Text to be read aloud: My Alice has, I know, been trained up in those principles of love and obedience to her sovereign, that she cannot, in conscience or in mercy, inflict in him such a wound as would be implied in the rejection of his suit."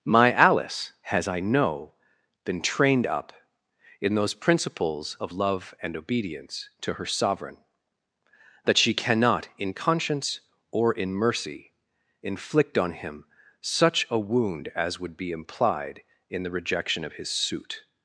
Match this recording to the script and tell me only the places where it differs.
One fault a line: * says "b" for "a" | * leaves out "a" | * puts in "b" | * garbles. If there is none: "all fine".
* says "on" for "in"